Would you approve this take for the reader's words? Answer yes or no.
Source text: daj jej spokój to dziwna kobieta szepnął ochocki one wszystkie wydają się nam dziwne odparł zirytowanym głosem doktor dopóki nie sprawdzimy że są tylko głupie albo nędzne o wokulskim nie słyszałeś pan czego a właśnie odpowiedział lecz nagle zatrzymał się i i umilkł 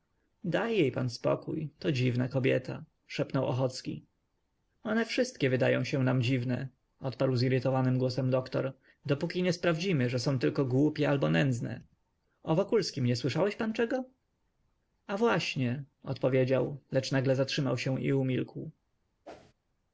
no